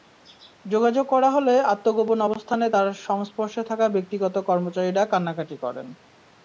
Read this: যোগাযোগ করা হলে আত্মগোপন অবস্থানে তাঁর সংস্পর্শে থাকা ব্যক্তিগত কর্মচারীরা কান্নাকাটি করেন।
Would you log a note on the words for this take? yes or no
no